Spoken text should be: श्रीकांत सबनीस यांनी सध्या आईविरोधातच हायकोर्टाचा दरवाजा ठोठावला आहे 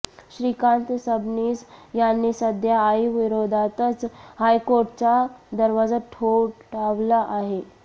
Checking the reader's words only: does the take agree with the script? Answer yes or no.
yes